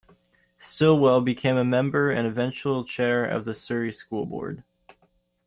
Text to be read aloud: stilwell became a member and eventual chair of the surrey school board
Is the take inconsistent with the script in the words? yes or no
no